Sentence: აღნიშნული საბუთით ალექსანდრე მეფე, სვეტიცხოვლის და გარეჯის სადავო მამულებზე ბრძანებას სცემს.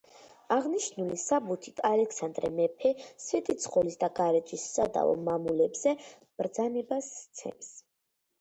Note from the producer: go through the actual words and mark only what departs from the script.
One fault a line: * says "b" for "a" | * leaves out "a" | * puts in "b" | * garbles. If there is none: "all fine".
all fine